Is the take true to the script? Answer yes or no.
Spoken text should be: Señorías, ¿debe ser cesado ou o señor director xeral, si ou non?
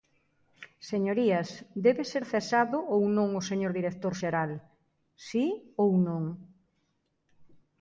no